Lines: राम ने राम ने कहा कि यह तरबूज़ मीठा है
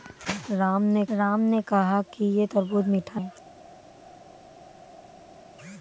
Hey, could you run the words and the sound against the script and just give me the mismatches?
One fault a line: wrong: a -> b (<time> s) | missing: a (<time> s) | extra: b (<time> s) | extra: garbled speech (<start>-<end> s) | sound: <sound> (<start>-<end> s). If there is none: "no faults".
no faults